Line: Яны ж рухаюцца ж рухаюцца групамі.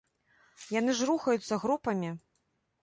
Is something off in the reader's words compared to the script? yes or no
yes